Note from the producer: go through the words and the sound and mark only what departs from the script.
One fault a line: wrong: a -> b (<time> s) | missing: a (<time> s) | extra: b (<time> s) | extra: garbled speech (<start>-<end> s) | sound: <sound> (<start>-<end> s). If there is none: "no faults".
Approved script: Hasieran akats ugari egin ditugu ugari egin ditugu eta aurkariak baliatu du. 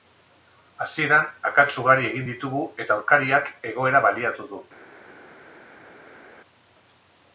missing: ugari egin ditugu (2.6 s)
extra: egoera (3.7 s)